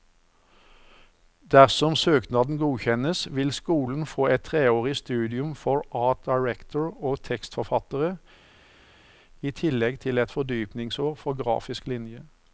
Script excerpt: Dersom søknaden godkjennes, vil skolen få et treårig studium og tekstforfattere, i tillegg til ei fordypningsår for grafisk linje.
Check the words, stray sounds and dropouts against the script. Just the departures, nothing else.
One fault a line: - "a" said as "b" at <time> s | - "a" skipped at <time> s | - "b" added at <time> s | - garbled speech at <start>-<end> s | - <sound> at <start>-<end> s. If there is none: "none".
- "for art director" added at 5.5 s
- "ei" said as "et" at 10.2 s